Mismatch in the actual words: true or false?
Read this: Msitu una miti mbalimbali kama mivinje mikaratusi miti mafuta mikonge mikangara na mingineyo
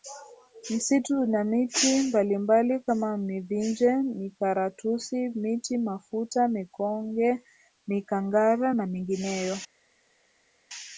false